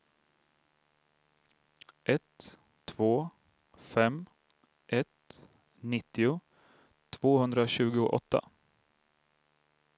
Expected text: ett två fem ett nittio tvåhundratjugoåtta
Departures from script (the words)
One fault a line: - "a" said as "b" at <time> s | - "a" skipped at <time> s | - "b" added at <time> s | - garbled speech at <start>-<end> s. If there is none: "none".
none